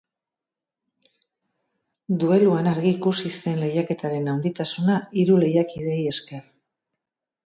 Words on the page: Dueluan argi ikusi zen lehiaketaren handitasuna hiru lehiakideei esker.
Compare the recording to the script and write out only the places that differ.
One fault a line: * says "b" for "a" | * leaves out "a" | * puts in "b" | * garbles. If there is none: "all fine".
all fine